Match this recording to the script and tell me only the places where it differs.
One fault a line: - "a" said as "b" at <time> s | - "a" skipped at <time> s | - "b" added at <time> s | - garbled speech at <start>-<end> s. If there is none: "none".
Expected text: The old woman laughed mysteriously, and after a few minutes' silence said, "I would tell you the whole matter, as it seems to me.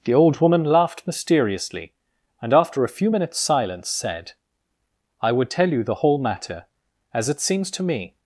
none